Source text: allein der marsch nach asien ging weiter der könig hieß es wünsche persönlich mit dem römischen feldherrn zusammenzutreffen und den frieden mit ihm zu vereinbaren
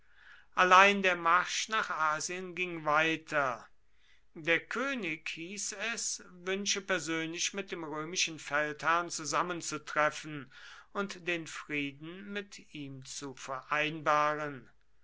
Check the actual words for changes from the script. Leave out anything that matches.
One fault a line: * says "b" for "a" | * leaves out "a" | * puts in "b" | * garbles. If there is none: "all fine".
all fine